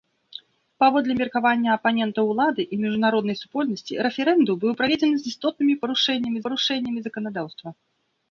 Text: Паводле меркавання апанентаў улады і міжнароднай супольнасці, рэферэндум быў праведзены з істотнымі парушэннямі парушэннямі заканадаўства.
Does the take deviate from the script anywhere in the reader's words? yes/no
no